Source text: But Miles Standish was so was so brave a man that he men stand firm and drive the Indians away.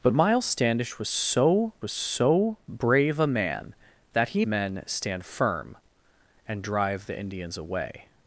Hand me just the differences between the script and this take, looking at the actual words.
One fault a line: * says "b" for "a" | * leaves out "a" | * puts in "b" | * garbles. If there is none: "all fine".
all fine